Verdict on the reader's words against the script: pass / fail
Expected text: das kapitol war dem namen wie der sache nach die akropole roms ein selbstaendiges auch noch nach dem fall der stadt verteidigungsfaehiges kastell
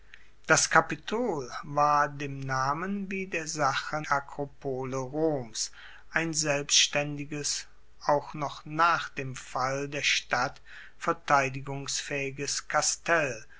fail